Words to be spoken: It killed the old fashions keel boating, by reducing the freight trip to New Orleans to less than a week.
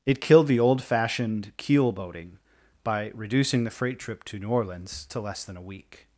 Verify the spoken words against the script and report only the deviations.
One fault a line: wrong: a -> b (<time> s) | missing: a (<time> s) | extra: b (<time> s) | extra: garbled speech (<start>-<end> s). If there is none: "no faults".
wrong: fashions -> fashioned (0.8 s)